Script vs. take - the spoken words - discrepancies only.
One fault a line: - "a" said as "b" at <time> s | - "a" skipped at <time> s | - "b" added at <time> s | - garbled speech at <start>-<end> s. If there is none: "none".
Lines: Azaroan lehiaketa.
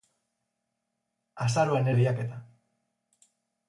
none